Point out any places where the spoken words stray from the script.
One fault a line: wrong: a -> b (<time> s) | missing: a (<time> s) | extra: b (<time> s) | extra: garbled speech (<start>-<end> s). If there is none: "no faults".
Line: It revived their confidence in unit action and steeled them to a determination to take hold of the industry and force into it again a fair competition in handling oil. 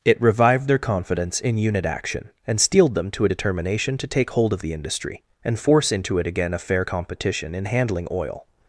no faults